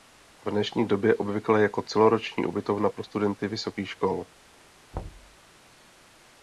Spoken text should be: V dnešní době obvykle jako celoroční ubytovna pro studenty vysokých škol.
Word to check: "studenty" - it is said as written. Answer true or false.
true